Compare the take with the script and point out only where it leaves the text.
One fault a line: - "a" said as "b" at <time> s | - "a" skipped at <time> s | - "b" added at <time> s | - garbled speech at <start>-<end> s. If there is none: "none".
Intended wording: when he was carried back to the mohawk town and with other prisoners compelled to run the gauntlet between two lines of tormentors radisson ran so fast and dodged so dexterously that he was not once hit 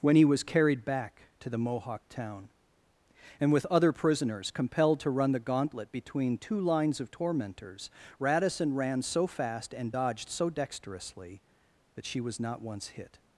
- "he" said as "she" at 12.1 s